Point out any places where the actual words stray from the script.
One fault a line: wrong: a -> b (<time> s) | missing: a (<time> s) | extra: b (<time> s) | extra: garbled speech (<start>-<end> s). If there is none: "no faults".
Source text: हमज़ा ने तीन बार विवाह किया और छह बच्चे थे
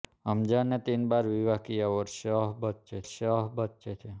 extra: छह बच्चे (3.1 s)